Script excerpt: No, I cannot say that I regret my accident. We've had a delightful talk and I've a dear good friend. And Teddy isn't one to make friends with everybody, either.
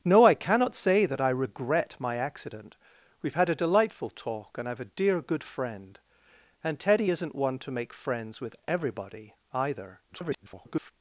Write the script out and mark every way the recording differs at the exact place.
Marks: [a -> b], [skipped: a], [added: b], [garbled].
No, I cannot say that I regret my accident. We've had a delightful talk and I've a dear good friend. And Teddy isn't one to make friends with everybody, either. [garbled]